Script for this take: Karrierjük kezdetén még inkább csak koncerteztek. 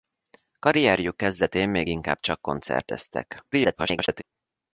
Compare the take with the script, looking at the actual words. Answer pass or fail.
fail